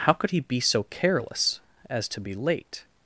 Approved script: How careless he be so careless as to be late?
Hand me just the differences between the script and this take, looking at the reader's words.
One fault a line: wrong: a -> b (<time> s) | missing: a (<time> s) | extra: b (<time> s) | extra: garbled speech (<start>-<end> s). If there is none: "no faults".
wrong: careless -> could (0.1 s)